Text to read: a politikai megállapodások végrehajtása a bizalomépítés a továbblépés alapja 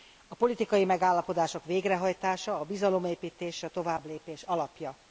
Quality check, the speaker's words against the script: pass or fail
pass